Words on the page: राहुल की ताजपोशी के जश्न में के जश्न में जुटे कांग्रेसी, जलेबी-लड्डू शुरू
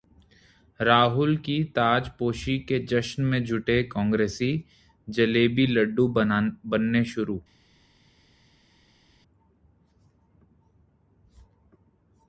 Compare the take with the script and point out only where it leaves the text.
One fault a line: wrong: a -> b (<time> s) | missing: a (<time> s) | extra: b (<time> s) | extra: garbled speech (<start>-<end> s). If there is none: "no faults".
missing: के जश्न में (3.4 s)
extra: बनने (6.1 s)